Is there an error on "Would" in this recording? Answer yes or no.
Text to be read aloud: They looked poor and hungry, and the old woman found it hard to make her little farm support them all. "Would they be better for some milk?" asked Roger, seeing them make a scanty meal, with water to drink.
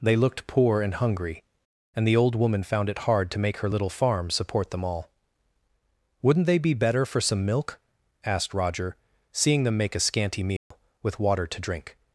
yes